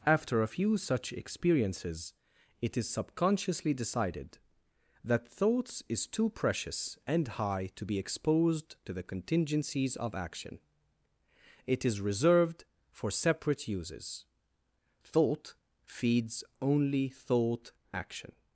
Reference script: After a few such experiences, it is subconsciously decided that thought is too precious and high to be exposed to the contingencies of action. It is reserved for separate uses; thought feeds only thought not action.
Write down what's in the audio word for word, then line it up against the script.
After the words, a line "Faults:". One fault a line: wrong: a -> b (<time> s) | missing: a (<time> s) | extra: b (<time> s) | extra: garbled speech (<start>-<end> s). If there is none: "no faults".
After a few such experiences, it is subconsciously decided that thoughts is too precious and high to be exposed to the contingencies of action. It is reserved for separate uses; thought feeds only thought action.
Faults:
wrong: thought -> thoughts (5.3 s)
missing: not (17.7 s)